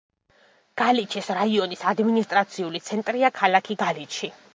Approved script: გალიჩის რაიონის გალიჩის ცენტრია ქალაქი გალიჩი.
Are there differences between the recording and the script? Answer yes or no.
yes